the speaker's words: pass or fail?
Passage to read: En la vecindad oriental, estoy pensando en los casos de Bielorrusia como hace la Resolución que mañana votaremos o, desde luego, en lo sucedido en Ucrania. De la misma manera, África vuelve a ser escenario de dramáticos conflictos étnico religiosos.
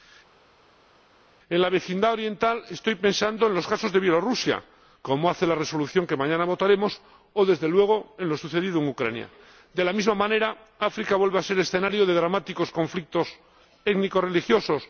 pass